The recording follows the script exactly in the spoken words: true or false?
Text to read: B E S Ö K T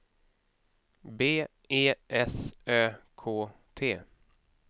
true